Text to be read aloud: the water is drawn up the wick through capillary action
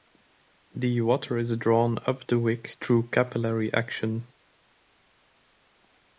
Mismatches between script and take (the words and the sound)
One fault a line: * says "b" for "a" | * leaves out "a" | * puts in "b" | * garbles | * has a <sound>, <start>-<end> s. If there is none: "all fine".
all fine